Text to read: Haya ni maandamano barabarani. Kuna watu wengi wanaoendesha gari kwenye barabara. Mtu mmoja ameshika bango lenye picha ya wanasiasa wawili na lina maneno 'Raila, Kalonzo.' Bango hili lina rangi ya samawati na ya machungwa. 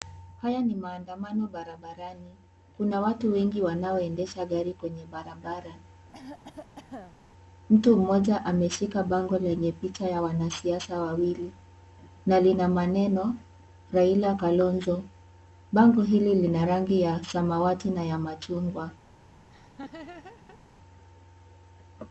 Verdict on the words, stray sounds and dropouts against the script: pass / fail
fail